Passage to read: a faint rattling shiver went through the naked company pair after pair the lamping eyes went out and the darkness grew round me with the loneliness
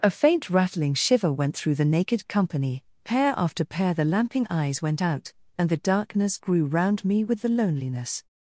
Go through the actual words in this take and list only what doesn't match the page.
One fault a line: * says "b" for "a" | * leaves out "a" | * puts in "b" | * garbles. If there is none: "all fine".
all fine